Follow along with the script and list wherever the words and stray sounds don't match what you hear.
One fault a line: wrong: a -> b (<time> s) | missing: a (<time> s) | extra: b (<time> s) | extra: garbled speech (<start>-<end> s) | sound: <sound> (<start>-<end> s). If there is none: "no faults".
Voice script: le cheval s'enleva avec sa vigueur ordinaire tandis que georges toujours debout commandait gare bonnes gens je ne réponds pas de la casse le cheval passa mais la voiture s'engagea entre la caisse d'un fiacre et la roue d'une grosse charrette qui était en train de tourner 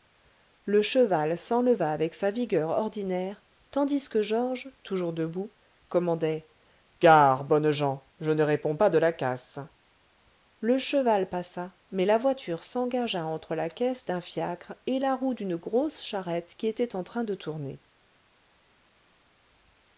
no faults